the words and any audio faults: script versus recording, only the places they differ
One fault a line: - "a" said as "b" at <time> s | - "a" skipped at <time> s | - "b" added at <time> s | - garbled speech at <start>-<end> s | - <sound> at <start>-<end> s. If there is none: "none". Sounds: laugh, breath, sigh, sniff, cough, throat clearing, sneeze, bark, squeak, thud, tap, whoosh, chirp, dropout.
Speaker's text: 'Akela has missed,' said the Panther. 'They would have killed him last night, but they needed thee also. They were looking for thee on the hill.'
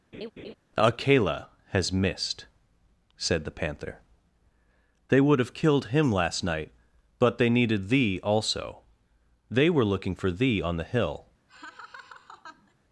- laugh at 0.1-0.5 s
- laugh at 11.5-12.7 s